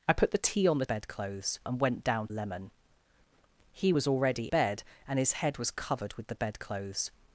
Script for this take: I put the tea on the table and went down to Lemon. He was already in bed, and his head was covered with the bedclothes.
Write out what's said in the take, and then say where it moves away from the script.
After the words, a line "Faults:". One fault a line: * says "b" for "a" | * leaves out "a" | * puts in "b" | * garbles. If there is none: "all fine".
I put the tea on the bedclothes and went down Lemon. He was already bed, and his head was covered with the bedclothes.
Faults:
* says "bedclothes" for "table"
* leaves out "to"
* leaves out "in"